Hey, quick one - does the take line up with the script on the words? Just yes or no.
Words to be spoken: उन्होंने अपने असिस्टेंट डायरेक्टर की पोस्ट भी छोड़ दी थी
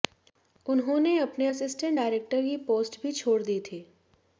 yes